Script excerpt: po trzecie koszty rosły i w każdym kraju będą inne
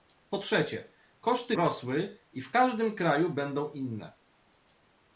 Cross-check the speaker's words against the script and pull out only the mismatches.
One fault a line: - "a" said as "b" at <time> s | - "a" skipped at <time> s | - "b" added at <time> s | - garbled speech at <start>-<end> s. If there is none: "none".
none